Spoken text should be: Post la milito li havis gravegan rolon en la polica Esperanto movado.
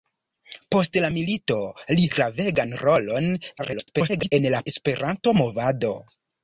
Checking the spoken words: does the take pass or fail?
fail